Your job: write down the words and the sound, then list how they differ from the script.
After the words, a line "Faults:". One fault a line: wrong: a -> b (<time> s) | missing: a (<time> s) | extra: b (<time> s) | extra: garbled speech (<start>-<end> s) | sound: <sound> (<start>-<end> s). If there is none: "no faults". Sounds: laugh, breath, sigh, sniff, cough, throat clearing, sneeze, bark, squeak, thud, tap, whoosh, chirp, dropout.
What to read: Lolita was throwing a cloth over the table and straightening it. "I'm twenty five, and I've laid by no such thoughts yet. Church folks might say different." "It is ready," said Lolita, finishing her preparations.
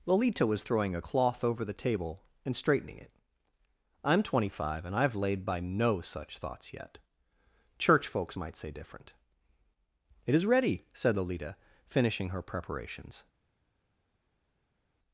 Lolita was throwing a cloth over the table and straightening it. "I'm twenty five, and I've laid by no such thoughts yet. Church folks might say different." "It is ready," said Lolita, finishing her preparations.
Faults:
no faults